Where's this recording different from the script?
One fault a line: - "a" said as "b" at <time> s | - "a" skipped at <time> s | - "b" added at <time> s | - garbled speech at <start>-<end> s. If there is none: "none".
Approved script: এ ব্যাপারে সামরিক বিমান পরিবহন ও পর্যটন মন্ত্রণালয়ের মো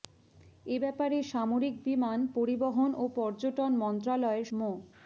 none